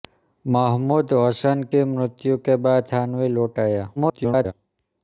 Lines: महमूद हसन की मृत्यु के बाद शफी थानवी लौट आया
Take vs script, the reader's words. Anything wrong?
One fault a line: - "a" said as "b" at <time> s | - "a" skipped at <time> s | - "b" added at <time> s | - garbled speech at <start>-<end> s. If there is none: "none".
- "शफी" skipped at 2.9 s
- garbled speech at 4.0-4.5 s